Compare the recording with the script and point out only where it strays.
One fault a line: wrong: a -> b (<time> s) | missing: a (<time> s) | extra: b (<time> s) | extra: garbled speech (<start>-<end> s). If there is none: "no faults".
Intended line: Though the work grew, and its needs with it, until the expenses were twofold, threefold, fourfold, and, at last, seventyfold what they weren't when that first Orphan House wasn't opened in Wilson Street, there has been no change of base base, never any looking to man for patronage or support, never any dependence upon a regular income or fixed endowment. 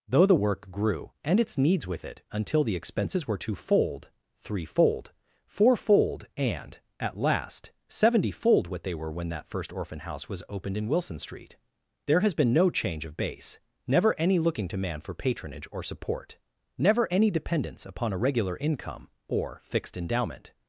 wrong: weren't -> were (8.9 s)
wrong: wasn't -> was (10.3 s)
missing: base (13.6 s)